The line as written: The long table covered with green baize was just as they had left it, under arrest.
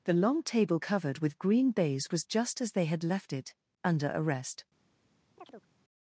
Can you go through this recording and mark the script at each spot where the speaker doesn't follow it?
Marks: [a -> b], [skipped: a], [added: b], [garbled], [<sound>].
The long table covered with green baize was just as they had left it, under arrest. [chirp]